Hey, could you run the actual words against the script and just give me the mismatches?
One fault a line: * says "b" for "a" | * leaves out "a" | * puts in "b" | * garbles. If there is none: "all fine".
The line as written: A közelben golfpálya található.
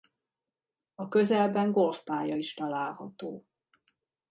* puts in "is"